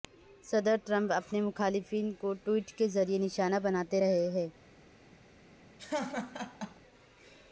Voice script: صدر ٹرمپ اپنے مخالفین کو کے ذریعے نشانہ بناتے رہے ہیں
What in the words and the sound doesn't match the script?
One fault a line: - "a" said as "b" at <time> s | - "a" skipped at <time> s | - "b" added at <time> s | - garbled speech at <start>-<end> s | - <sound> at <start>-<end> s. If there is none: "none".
- "ٹویٹ" added at 2.4 s
- laugh at 5.8-6.8 s